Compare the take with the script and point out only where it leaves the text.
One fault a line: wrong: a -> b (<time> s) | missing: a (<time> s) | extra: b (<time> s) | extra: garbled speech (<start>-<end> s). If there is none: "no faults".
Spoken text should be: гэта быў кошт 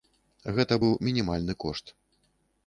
extra: мінімальны (1.1 s)